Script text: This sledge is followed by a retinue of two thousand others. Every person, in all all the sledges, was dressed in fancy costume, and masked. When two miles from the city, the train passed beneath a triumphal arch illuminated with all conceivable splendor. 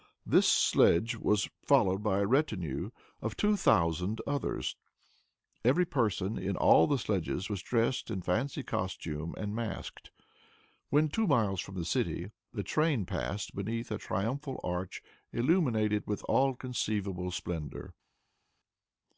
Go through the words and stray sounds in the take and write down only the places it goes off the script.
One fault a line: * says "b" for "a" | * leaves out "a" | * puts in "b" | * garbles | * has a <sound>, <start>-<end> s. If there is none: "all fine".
* says "was" for "is"
* leaves out "all"